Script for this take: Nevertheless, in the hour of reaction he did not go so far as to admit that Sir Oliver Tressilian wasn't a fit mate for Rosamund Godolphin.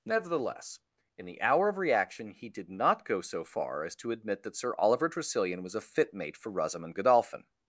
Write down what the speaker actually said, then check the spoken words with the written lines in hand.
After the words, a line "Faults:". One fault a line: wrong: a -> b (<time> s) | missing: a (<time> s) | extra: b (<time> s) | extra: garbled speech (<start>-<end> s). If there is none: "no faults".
Nevertheless, in the hour of reaction he did not go so far as to admit that Sir Oliver Tressilian was a fit mate for Rosamund Godolphin.
Faults:
wrong: wasn't -> was (5.6 s)